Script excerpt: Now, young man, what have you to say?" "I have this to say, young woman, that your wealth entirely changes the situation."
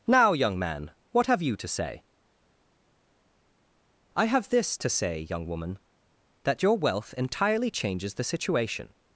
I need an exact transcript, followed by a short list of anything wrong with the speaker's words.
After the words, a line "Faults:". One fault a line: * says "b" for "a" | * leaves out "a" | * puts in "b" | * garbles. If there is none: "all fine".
Now, young man, what have you to say?" "I have this to say, young woman, that your wealth entirely changes the situation."
Faults:
all fine